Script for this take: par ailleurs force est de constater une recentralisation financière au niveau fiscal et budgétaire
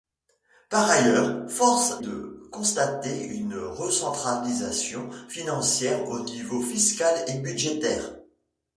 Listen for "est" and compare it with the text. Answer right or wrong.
wrong